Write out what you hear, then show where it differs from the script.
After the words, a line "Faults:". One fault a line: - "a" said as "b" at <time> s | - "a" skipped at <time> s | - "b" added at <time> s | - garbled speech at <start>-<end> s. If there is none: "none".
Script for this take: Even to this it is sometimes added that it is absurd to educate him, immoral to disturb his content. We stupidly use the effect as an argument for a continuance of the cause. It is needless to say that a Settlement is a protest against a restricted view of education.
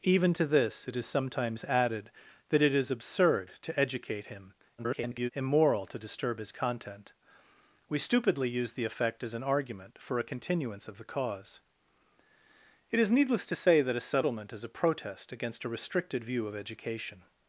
Even to this it is sometimes added that it is absurd to educate him, [garbled] immoral to disturb his content. We stupidly use the effect as an argument for a continuance of the cause. It is needless to say that a Settlement is a protest against a restricted view of education.
Faults:
- garbled speech at 4.8-5.3 s